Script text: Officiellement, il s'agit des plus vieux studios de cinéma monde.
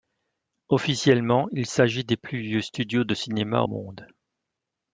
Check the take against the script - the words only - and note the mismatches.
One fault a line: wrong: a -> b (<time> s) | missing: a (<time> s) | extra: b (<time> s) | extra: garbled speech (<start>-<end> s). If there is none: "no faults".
no faults